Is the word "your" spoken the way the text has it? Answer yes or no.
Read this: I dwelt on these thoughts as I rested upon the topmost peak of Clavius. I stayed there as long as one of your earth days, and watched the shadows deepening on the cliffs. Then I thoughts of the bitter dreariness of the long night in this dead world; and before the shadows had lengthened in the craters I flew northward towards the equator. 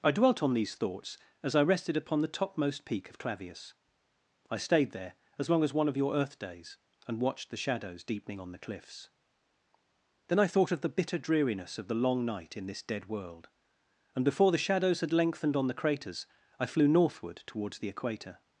yes